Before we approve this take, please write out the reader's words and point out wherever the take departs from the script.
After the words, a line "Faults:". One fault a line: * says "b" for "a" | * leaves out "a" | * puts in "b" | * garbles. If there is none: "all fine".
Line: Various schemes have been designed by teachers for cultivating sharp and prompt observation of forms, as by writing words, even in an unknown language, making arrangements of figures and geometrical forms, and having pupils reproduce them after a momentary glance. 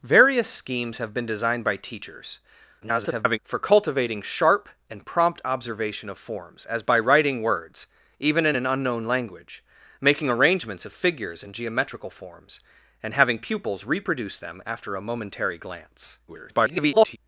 Various schemes have been designed by teachers [garbled] for cultivating sharp and prompt observation of forms, as by writing words, even in an unknown language, making arrangements of figures and geometrical forms, and having pupils reproduce them after a momentary glance. [garbled]
Faults:
* garbles
* garbles